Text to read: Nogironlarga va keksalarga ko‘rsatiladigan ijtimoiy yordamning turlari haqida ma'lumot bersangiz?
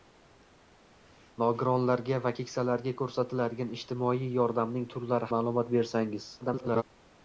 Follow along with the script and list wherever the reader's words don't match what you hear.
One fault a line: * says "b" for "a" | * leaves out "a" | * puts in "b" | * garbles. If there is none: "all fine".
* leaves out "haqida"
* garbles